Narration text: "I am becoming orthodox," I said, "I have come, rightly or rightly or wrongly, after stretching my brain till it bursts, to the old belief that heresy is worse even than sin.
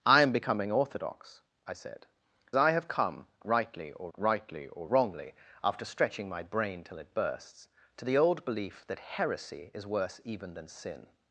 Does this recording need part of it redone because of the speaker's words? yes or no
no